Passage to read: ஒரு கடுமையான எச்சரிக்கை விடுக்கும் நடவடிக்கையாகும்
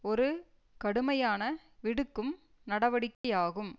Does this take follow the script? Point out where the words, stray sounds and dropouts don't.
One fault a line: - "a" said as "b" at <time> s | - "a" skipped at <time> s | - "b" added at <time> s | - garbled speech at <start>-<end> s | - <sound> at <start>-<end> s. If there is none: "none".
- "எச்சரிக்கை" skipped at 1.4 s
- dropout at 3.1-3.2 s